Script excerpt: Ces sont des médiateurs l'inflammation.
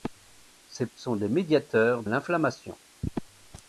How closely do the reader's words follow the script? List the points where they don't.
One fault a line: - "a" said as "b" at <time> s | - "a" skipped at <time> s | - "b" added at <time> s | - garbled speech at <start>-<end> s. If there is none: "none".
none